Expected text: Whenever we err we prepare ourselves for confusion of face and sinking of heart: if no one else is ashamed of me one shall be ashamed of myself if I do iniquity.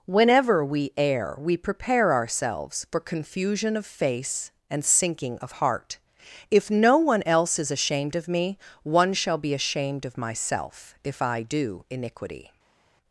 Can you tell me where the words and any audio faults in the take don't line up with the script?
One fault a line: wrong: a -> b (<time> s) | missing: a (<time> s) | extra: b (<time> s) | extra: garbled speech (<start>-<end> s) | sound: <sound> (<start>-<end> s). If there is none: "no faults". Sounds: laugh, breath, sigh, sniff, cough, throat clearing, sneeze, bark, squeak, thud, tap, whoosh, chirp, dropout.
no faults